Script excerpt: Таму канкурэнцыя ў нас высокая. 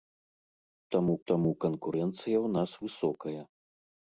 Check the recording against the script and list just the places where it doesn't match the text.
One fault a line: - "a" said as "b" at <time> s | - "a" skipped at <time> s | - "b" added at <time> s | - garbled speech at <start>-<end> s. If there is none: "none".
- "таму" added at 1.3 s